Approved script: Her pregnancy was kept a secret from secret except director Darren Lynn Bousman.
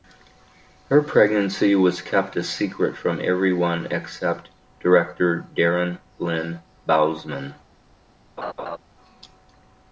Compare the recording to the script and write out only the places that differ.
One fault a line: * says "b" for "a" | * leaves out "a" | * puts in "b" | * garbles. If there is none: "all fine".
* says "everyone" for "secret"